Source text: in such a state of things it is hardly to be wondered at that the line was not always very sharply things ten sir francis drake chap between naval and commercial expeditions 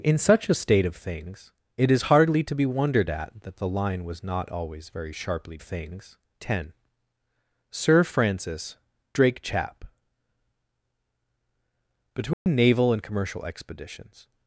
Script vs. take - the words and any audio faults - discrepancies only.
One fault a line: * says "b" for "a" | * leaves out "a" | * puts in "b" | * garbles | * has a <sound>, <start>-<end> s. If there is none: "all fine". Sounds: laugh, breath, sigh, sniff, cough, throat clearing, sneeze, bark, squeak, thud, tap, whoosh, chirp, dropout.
* has a dropout, 12.3-12.5 s